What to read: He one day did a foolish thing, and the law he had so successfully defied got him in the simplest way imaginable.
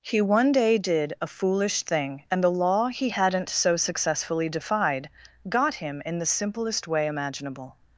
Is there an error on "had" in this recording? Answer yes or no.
yes